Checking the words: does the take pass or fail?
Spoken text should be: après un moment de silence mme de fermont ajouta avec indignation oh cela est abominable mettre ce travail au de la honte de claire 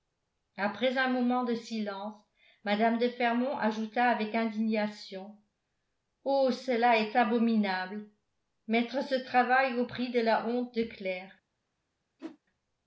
fail